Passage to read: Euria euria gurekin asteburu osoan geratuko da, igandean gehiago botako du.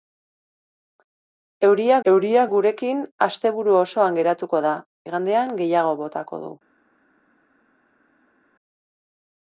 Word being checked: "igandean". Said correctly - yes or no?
yes